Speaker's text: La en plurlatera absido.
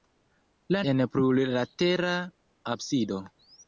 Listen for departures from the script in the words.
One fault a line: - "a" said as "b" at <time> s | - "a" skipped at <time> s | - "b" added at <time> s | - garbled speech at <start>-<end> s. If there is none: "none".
none